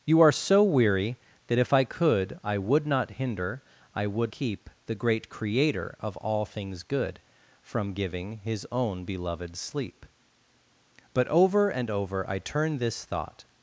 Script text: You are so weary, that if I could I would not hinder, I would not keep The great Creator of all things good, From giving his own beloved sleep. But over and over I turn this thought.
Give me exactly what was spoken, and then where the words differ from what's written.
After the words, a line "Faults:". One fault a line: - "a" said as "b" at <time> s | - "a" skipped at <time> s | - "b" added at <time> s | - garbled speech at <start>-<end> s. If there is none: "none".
You are so weary, that if I could I would not hinder, I would keep The great Creator of all things good, From giving his own beloved sleep. But over and over I turn this thought.
Faults:
- "not" skipped at 4.3 s